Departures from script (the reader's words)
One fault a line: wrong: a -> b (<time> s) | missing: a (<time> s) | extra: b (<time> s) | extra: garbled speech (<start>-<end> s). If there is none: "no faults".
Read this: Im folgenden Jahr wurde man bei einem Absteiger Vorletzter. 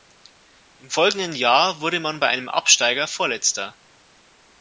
no faults